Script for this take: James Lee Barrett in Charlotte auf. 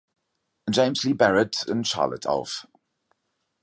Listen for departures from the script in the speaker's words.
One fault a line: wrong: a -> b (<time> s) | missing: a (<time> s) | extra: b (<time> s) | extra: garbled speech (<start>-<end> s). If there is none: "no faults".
no faults